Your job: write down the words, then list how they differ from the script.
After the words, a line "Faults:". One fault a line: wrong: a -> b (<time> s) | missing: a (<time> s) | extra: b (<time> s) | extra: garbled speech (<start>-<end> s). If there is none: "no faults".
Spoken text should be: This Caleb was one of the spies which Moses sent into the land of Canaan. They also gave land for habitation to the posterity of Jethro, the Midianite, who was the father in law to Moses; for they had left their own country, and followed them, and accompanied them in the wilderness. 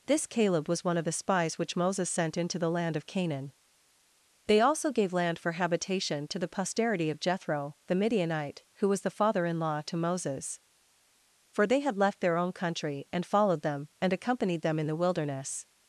This Caleb was one of the spies which Moses sent into the land of Canaan. They also gave land for habitation to the posterity of Jethro, the Midianite, who was the father in law to Moses; for they had left their own country, and followed them, and accompanied them in the wilderness.
Faults:
no faults